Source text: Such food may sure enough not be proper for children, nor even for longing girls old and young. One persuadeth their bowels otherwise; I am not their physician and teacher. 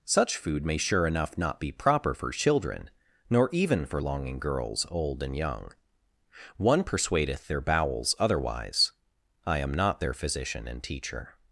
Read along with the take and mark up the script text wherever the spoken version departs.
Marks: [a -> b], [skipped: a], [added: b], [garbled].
Such food may sure enough not be proper for children, nor even for longing girls old and young. One persuadeth their bowels otherwise; I am not their physician and teacher.